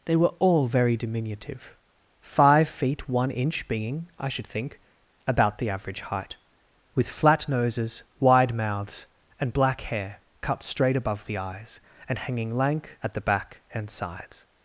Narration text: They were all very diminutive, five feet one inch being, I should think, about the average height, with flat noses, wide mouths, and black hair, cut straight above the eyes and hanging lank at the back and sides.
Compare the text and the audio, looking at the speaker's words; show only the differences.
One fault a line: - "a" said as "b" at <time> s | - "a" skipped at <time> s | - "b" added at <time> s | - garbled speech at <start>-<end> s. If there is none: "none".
none